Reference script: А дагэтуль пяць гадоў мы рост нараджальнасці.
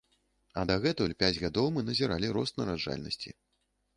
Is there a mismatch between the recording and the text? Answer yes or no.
yes